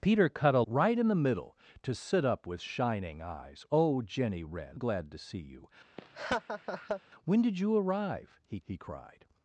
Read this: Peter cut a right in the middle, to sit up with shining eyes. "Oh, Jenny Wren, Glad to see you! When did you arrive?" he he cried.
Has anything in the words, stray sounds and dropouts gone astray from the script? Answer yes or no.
yes